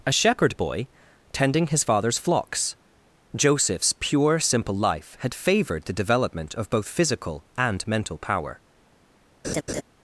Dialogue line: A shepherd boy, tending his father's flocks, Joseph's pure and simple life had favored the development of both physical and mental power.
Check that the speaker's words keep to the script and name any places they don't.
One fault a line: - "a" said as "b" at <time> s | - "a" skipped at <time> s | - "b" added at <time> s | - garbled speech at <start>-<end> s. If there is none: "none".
- "and" skipped at 4.4 s